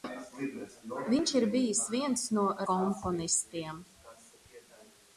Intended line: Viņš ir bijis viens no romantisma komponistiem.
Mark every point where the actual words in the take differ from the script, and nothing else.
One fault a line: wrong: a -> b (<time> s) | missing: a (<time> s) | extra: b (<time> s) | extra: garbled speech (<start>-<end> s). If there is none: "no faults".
missing: romantisma (2.5 s)